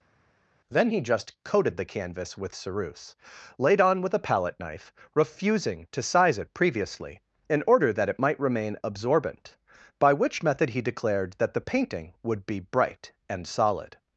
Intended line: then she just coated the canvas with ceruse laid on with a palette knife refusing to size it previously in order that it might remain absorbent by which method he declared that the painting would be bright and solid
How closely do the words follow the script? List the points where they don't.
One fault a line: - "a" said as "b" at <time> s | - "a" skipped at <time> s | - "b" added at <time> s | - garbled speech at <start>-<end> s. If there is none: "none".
- "she" said as "he" at 0.9 s